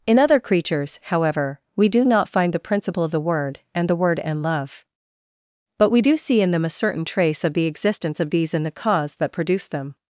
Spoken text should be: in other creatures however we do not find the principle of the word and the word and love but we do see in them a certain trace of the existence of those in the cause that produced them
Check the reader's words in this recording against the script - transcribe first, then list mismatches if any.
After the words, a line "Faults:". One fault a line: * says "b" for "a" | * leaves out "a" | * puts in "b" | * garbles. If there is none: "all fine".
in other creatures however we do not find the principle of the word and the word and love but we do see in them a certain trace of the existence of these in the cause that produced them
Faults:
* says "these" for "those"